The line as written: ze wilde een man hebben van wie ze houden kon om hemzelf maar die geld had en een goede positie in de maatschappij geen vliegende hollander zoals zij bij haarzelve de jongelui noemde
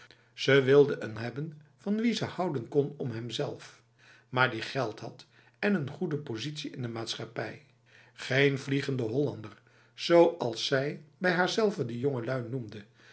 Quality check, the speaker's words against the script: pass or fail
fail